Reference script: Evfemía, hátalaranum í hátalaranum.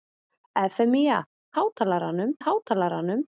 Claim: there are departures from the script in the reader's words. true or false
false